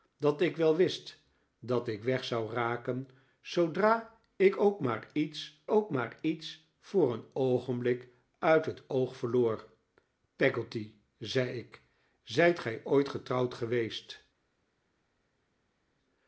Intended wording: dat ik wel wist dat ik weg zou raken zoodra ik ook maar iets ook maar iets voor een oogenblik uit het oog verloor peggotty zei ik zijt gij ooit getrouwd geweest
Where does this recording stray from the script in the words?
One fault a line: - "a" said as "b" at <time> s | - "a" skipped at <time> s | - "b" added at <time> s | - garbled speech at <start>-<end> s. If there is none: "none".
none